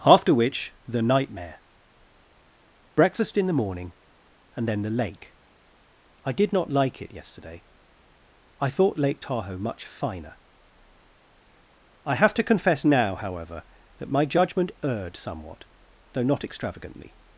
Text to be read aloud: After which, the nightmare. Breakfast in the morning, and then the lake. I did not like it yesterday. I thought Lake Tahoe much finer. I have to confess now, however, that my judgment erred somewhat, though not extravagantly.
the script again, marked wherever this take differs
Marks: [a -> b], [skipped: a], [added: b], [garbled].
After which, the nightmare. Breakfast in the morning, and then the lake. I did not like it yesterday. I thought Lake Tahoe much finer. I have to confess now, however, that my judgment erred somewhat, though not extravagantly.